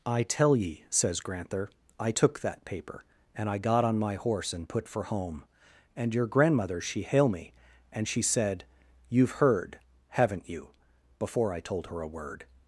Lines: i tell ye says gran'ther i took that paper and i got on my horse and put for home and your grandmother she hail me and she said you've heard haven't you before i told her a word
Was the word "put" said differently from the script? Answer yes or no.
no